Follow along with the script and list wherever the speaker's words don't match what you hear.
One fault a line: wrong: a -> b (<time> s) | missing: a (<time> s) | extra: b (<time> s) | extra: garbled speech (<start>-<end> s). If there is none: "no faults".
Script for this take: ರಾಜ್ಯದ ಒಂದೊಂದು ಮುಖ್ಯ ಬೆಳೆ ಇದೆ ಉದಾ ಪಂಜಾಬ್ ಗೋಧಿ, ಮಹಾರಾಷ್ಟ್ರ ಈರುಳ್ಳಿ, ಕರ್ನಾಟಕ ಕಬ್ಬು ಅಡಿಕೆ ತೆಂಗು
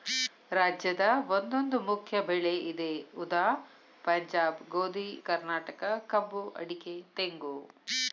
missing: ಮಹಾರಾಷ್ಟ್ರ ಈರುಳ್ಳಿ (5.1 s)